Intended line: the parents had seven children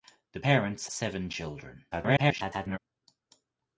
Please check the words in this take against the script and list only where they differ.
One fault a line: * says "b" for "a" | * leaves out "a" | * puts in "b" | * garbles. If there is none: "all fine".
* leaves out "had"
* garbles